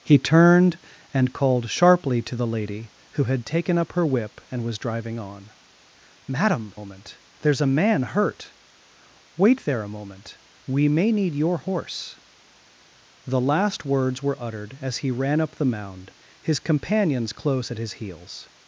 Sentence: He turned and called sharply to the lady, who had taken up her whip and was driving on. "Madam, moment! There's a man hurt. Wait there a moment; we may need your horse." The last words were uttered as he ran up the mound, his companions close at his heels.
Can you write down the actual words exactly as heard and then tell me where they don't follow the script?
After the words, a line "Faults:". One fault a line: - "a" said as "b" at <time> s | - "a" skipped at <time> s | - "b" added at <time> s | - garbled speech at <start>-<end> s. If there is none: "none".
He turned and called sharply to the lady, who had taken up her whip and was driving on. "Madam, moment! There's a man hurt. Wait there a moment; we may need your horse." The last words were uttered as he ran up the mound, his companions close at his heels.
Faults:
none